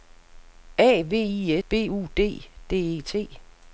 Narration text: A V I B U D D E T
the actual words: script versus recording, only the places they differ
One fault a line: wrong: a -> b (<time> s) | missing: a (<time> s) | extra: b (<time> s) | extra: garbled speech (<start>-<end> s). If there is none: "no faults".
no faults